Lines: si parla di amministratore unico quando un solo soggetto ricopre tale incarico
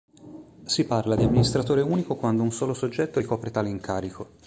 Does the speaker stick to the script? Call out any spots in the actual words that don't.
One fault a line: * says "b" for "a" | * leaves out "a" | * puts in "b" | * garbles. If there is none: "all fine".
all fine